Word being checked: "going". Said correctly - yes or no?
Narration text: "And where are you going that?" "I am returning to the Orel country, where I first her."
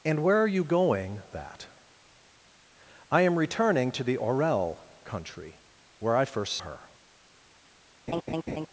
yes